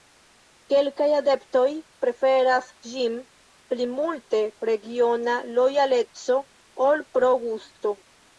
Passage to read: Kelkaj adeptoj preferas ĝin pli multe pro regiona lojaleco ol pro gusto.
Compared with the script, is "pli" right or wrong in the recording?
right